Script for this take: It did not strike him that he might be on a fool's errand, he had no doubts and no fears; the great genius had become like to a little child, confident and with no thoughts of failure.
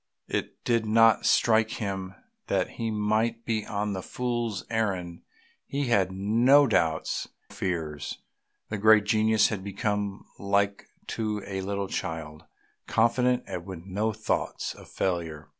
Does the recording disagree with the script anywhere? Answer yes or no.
yes